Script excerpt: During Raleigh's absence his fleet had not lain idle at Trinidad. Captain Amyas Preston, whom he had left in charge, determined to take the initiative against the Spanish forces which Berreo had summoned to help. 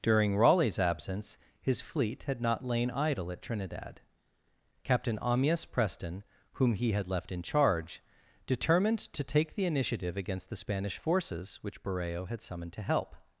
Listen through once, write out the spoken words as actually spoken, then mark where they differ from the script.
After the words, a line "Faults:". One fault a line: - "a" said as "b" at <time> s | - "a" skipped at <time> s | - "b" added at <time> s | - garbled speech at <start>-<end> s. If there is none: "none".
During Raleigh's absence his fleet had not lain idle at Trinidad. Captain Amyas Preston, whom he had left in charge, determined to take the initiative against the Spanish forces which Berreo had summoned to help.
Faults:
none